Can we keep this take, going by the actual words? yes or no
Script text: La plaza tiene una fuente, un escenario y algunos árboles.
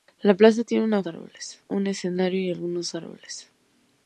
no